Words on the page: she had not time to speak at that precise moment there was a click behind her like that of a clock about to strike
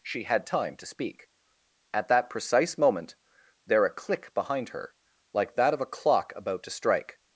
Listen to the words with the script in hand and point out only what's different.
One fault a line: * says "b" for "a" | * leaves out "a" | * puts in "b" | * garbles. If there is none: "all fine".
* leaves out "not"
* leaves out "was"